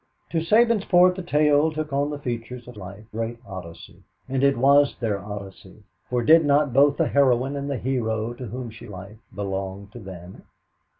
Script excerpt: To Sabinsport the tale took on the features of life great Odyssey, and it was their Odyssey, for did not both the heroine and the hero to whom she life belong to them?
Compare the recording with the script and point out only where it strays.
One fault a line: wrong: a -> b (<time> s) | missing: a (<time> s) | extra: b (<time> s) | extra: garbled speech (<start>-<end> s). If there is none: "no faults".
no faults